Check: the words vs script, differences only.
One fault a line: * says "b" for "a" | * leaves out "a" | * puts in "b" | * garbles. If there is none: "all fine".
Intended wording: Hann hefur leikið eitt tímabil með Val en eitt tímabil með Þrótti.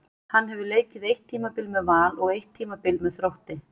* says "og" for "en"